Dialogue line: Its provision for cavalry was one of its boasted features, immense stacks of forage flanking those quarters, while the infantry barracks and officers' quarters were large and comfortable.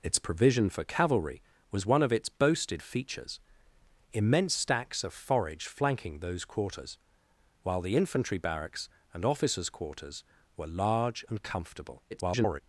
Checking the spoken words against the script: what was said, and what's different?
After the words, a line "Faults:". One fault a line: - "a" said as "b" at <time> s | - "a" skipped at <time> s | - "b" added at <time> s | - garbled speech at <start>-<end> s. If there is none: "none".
Its provision for cavalry was one of its boasted features, immense stacks of forage flanking those quarters, while the infantry barracks and officers' quarters were large and comfortable. [garbled]
Faults:
- garbled speech at 12.1-12.6 s